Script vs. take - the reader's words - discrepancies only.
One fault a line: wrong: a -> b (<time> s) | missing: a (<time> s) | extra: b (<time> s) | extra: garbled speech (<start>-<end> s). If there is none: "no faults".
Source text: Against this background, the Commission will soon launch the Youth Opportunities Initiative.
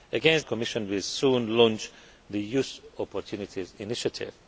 missing: this background (0.5 s)